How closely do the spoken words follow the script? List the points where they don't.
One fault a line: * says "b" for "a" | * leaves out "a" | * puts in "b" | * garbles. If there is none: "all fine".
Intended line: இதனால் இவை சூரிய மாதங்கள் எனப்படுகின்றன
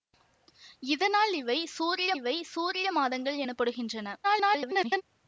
* puts in "இவை சூரிய"
* garbles